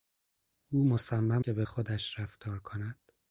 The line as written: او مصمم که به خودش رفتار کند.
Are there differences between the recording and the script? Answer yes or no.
no